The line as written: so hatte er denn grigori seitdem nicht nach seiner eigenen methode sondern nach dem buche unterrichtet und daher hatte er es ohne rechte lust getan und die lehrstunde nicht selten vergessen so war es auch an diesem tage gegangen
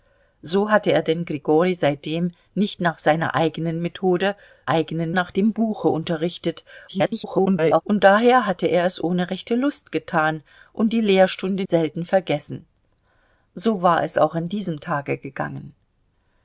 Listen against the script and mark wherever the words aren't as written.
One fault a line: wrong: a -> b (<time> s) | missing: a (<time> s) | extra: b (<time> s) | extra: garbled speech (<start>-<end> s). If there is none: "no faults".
wrong: sondern -> eigenen (4.7 s)
extra: garbled speech (6.9-7.8 s)
missing: nicht (11.6 s)